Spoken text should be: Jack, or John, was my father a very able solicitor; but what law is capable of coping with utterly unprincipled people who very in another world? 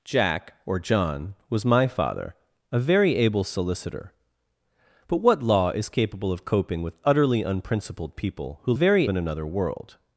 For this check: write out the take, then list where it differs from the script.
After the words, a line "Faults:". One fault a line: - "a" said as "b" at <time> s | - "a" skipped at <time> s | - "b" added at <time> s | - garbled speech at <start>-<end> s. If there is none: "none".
Jack, or John, was my father a very able solicitor; but what law is capable of coping with utterly unprincipled people who very in another world?
Faults:
none